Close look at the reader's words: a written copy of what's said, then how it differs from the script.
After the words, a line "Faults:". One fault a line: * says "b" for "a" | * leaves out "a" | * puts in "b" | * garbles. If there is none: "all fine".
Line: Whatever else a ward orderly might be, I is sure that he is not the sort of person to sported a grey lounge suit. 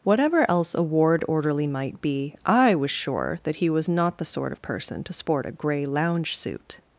Whatever else a ward orderly might be, I was sure that he was not the sort of person to sport a grey lounge suit.
Faults:
* says "was" for "is"
* says "was" for "is"
* says "sport" for "sported"